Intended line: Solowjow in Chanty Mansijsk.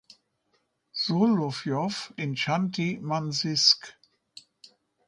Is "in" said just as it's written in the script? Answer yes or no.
yes